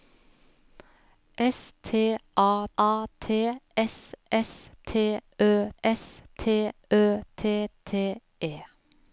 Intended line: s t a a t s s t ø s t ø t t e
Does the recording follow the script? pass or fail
pass